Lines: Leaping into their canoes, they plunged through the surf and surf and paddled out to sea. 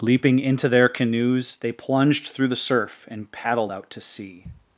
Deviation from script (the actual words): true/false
true